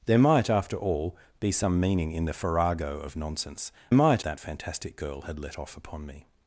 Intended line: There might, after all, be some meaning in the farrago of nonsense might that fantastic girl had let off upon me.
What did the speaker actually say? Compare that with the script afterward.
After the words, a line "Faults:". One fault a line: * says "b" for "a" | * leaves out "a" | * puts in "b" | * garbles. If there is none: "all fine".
There might, after all, be some meaning in the farrago of nonsense might that fantastic girl had let off upon me.
Faults:
all fine